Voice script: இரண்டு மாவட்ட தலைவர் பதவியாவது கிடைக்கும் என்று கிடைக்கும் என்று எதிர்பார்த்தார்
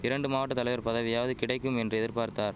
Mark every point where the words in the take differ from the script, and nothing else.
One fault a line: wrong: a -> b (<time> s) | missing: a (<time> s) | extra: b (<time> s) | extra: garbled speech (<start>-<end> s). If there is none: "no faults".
missing: கிடைக்கும் என்று (2.0 s)